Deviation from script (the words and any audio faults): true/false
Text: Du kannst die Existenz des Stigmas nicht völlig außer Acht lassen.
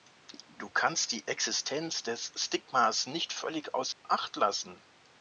true